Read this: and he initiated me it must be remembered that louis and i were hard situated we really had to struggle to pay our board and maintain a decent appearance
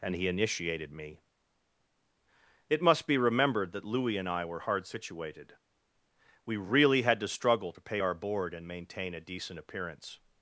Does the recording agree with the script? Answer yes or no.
yes